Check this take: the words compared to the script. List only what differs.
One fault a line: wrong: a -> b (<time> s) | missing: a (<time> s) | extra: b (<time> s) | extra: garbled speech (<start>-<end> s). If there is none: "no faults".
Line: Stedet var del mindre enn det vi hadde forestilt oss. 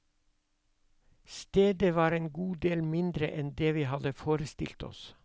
extra: en god (2.1 s)